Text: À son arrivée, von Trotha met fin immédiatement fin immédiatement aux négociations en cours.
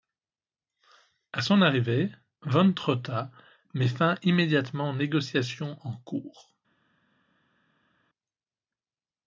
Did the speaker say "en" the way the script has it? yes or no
yes